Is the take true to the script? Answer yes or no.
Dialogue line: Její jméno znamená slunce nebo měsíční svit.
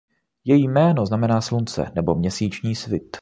yes